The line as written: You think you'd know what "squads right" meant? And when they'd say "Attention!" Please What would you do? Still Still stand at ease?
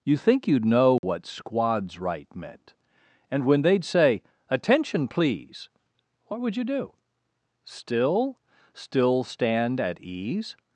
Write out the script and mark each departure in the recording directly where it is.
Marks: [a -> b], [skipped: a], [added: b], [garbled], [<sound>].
You think you'd know what [dropout] "squads right" meant? And when they'd say "Attention!" Please What would you do? Still Still stand at ease?